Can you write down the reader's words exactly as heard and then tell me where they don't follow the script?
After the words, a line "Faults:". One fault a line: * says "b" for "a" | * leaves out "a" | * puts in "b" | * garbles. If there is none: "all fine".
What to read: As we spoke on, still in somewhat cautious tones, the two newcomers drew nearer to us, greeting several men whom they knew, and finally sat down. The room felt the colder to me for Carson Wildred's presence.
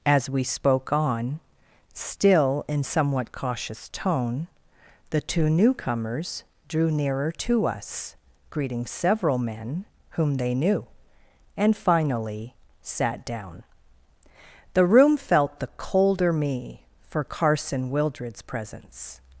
As we spoke on, still in somewhat cautious tone, the two newcomers drew nearer to us, greeting several men whom they knew, and finally sat down. The room felt the colder me for Carson Wildred's presence.
Faults:
* says "tone" for "tones"
* leaves out "to"